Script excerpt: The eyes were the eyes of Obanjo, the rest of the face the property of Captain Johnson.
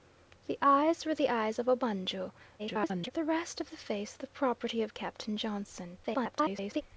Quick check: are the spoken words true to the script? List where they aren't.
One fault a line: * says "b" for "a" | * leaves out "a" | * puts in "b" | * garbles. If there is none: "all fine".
* garbles
* garbles